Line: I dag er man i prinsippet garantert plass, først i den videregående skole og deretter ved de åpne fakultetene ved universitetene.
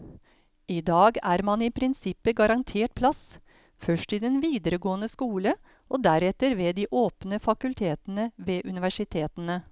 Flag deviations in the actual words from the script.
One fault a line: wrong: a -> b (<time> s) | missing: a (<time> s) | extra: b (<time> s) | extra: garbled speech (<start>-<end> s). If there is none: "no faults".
no faults